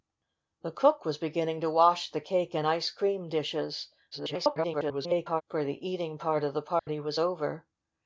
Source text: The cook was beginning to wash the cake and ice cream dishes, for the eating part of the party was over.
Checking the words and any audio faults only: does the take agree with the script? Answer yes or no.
no